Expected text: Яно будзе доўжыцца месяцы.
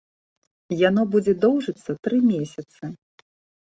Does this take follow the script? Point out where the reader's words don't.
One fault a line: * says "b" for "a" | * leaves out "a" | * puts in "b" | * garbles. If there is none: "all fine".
* puts in "тры"